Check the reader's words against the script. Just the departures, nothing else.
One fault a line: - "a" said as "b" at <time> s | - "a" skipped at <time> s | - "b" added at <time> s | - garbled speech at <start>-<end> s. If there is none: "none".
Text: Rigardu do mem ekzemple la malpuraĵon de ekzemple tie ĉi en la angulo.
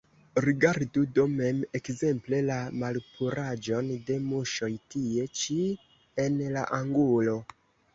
- "ekzemple" said as "muŝoj" at 4.3 s